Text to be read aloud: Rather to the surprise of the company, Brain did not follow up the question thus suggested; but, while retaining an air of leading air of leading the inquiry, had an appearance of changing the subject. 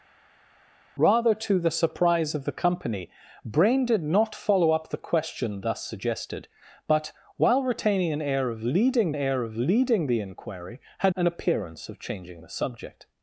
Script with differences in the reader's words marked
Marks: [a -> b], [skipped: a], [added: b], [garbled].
Rather to the surprise of the company, Brain did not follow up the question thus suggested; but, while retaining an air of leading air of leading the inquiry, had an appearance of changing the subject.